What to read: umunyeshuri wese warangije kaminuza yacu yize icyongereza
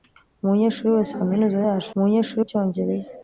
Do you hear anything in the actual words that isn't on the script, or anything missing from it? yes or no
yes